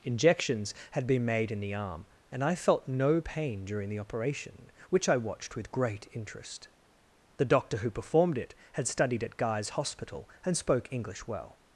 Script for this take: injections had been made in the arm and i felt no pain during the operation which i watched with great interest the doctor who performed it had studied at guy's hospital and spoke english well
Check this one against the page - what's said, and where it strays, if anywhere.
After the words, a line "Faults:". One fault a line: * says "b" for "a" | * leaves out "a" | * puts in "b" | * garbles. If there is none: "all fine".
injections had been made in the arm and i felt no pain during the operation which i watched with great interest the doctor who performed it had studied at guy's hospital and spoke english well
Faults:
all fine